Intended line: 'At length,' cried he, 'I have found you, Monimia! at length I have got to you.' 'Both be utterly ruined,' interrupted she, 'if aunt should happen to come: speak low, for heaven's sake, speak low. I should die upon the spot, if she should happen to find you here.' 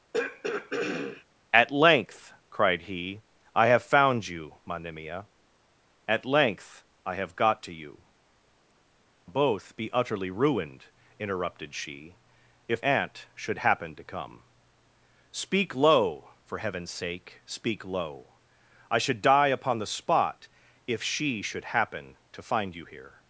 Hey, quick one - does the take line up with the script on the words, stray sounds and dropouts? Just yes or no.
no